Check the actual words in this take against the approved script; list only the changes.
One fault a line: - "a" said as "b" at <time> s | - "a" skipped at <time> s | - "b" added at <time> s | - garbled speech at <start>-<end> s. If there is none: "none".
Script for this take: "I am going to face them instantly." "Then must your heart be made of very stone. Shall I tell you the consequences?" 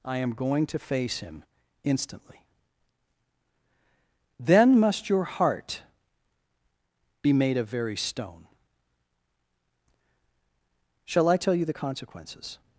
- "them" said as "him" at 1.2 s